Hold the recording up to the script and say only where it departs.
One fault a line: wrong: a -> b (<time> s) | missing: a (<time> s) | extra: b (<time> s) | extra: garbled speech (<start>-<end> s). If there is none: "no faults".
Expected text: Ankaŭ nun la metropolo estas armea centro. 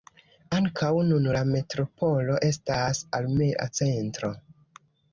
no faults